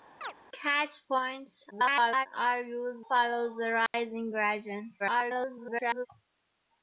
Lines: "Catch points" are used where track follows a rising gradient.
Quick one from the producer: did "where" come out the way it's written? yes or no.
no